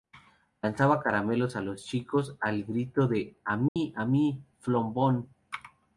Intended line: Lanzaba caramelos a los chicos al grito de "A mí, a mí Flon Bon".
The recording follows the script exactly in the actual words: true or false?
true